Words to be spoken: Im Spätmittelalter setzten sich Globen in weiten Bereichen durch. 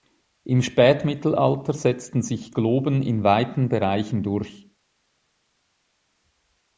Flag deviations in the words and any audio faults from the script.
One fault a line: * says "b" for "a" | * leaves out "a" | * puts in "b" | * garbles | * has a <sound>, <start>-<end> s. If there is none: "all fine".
all fine